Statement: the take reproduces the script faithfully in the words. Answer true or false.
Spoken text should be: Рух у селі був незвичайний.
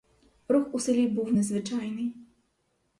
true